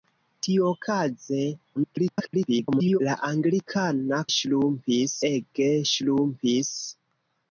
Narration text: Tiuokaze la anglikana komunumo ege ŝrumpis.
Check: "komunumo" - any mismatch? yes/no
yes